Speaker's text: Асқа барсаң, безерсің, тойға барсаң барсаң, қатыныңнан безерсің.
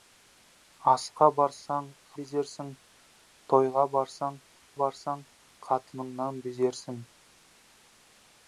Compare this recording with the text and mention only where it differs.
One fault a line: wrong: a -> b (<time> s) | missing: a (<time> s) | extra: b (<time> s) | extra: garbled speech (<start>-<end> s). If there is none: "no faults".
no faults